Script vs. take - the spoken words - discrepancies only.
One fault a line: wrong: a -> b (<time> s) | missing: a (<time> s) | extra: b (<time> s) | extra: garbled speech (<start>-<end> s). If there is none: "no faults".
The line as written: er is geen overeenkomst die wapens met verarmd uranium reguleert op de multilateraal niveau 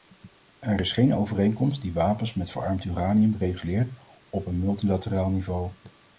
wrong: de -> een (4.5 s)